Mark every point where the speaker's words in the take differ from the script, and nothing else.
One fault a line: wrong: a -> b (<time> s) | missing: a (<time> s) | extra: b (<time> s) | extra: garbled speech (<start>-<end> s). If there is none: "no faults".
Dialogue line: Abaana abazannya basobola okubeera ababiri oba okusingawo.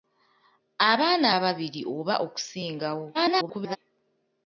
missing: abazannya basobola okubeera (1.3 s)
extra: garbled speech (3.1-3.8 s)